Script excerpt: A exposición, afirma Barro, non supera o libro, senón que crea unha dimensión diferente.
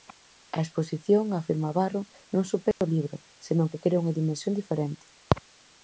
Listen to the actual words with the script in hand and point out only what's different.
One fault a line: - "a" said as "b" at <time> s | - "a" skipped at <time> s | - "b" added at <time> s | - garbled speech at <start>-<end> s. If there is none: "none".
none